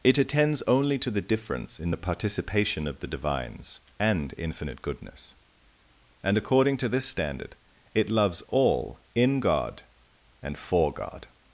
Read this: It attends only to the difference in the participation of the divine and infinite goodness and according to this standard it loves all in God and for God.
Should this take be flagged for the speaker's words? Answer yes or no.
yes